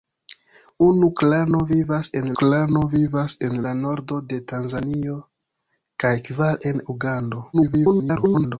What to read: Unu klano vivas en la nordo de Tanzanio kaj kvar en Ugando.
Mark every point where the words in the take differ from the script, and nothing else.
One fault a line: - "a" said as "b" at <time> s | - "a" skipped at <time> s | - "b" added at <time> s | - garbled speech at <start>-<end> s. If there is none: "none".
- "klano vivas en" added at 2.4 s
- garbled speech at 7.5-8.6 s